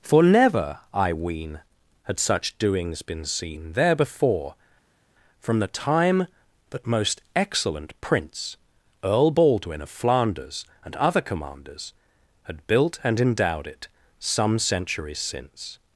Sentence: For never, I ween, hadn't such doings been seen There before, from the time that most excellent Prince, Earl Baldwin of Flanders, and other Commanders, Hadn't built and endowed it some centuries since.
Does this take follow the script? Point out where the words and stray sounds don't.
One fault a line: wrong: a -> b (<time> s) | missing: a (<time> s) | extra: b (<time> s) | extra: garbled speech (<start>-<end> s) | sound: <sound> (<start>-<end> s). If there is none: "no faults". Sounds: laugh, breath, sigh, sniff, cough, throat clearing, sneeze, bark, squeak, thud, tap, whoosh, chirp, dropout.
wrong: hadn't -> had (2.0 s)
wrong: Hadn't -> Had (12.4 s)